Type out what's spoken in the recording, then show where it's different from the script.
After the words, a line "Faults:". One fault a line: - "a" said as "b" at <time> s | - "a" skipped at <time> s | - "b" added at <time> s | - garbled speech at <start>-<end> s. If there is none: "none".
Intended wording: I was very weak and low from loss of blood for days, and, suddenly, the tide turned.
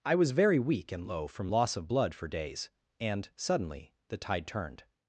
I was very weak and low from loss of blood for days, and, suddenly, the tide turned.
Faults:
none